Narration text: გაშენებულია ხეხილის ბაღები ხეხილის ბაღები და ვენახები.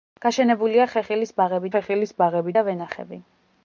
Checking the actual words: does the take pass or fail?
pass